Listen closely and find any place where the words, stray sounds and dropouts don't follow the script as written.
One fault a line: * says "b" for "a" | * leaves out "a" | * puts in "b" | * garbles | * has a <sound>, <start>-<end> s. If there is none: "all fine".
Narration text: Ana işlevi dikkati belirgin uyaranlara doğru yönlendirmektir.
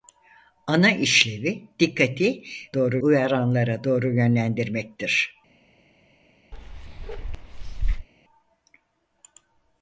* says "doğru" for "belirgin"
* has a bark, 6.5-8.1 s